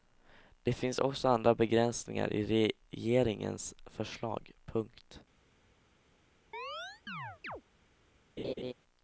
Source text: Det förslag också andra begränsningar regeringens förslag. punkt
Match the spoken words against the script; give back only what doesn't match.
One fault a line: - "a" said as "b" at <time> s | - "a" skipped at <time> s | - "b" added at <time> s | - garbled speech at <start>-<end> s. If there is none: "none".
- "förslag" said as "finns" at 0.7 s
- "i" added at 2.3 s